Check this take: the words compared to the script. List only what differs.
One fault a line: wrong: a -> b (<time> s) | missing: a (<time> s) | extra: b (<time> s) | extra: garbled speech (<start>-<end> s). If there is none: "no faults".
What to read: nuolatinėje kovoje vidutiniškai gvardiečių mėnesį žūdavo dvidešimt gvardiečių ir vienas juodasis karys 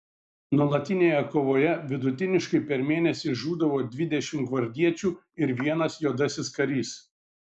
wrong: gvardiečių -> per (2.7 s)